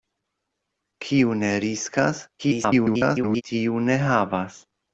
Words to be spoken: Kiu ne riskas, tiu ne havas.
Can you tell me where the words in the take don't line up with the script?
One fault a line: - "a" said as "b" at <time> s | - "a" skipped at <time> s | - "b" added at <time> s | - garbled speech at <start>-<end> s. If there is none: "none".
- garbled speech at 2.4-3.4 s